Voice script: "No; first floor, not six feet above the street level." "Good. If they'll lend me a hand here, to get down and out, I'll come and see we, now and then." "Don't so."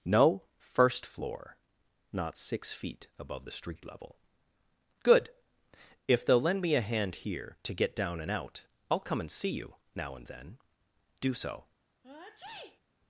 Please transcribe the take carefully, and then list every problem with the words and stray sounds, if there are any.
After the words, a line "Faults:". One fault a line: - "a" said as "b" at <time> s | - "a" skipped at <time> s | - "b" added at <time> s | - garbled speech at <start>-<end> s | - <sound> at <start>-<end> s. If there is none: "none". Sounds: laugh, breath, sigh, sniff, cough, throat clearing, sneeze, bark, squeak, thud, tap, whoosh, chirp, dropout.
"No; first floor, not six feet above the street level." "Good. If they'll lend me a hand here, to get down and out, I'll come and see you, now and then." "Do so."
Faults:
- "we" said as "you" at 9.5 s
- "Don't" said as "Do" at 11.2 s
- sneeze at 12.0-12.8 s